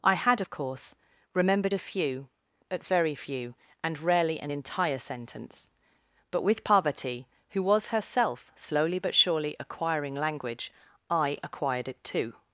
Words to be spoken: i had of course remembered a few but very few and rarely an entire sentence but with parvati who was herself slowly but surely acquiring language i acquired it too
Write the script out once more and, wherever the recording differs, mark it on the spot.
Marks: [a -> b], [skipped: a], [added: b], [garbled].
i had of course remembered a few but very few and rarely an entire sentence but with parvati who was herself slowly but surely acquiring language i acquired it too